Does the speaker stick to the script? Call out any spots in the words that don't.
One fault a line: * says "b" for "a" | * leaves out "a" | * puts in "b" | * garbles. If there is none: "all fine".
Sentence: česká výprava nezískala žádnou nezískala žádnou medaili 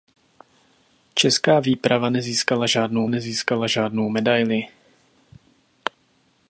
all fine